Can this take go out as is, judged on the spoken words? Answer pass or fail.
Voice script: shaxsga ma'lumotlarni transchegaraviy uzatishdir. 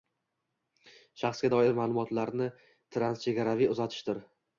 fail